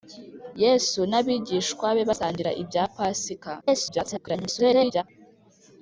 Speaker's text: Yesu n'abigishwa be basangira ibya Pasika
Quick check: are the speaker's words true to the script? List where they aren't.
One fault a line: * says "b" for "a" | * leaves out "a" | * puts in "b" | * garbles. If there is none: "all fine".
* garbles